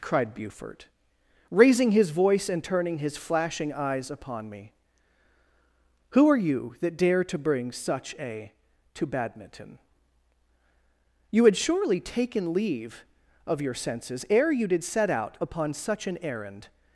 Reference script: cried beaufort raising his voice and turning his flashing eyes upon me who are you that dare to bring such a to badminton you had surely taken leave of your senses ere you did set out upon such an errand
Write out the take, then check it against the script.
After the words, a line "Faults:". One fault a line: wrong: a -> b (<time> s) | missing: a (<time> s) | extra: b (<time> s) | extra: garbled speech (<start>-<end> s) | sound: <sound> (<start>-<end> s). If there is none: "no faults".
cried beaufort raising his voice and turning his flashing eyes upon me who are you that dare to bring such a to badminton you had surely taken leave of your senses ere you did set out upon such an errand
Faults:
no faults